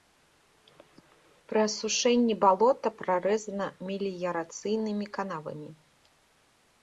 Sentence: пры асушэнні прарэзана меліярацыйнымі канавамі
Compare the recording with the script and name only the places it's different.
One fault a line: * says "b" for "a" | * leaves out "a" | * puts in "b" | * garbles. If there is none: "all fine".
* puts in "балота"